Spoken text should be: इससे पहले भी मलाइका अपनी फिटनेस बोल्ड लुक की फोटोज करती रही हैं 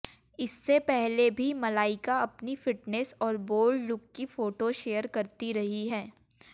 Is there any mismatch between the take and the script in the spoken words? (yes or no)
yes